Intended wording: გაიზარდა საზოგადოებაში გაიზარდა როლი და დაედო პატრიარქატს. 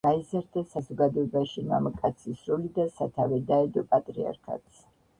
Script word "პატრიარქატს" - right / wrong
right